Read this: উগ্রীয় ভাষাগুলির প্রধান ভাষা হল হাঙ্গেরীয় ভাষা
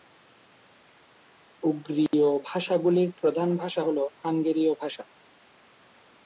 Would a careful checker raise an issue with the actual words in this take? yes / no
no